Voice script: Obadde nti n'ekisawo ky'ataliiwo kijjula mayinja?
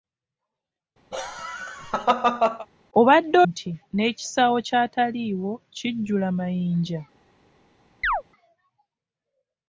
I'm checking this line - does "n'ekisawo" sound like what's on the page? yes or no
yes